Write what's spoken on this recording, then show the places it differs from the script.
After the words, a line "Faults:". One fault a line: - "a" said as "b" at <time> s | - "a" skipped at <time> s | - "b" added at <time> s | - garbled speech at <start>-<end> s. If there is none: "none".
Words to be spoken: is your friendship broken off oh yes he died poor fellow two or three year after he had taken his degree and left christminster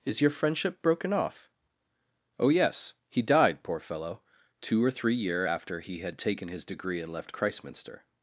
is your friendship broken off oh yes he died poor fellow two or three year after he had taken his degree and left christminster
Faults:
none